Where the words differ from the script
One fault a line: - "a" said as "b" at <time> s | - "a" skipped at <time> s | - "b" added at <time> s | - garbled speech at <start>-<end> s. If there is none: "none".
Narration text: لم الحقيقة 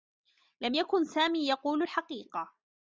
- "يكن سامي يقول" added at 0.7 s